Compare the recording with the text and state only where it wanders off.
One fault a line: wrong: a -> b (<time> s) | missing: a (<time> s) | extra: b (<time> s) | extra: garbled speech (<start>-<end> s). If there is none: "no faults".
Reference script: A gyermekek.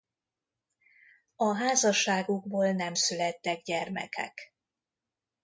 extra: házasságukból nem születtek (1.6 s)